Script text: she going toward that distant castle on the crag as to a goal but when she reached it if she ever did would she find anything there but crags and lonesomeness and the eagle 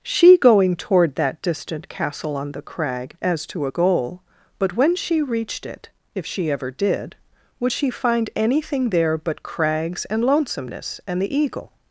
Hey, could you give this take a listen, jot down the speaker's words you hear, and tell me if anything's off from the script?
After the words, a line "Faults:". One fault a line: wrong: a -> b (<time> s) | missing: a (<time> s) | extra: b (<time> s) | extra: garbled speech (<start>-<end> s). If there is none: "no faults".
she going toward that distant castle on the crag as to a goal but when she reached it if she ever did would she find anything there but crags and lonesomeness and the eagle
Faults:
no faults